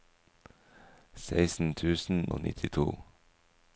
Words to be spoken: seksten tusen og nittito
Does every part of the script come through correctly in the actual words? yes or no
yes